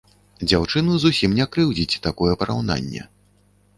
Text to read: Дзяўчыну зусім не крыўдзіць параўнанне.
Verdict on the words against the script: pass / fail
fail